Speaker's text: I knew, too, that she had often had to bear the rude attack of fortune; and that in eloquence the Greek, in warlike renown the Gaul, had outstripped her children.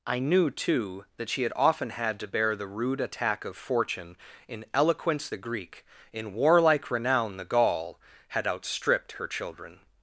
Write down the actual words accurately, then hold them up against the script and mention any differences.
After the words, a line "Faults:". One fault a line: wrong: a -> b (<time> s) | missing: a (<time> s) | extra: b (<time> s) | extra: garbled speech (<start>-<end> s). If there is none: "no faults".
I knew, too, that she had often had to bear the rude attack of fortune; in eloquence the Greek, in warlike renown the Gaul, had outstripped her children.
Faults:
missing: and that (4.2 s)